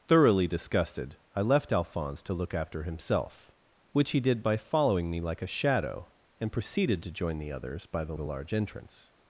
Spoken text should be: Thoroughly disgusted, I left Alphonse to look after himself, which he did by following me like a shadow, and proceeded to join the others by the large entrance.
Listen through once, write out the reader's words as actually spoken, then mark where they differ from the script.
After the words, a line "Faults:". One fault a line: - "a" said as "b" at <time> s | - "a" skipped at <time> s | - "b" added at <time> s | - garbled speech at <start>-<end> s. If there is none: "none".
Thoroughly disgusted, I left Alphonse to look after himself, which he did by following me like a shadow, and proceeded to join the others by the the large entrance.
Faults:
- "the" added at 8.1 s